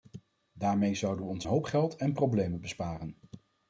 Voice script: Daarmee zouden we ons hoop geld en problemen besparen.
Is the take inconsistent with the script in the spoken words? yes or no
no